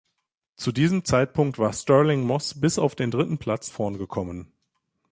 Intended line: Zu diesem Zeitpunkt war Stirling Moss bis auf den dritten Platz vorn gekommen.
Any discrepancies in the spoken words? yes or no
no